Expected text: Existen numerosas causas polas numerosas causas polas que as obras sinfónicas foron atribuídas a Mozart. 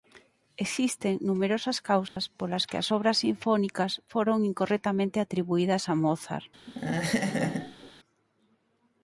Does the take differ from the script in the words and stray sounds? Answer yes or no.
yes